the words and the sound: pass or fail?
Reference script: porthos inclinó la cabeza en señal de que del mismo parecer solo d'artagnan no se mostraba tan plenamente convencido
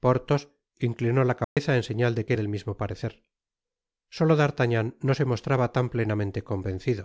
fail